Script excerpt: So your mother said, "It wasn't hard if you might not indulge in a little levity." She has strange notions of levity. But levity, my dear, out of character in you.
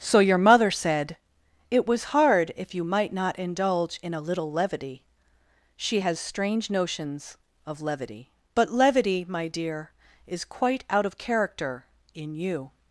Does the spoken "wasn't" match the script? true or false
false